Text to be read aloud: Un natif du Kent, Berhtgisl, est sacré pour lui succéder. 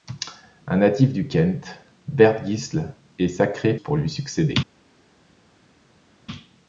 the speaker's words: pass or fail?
pass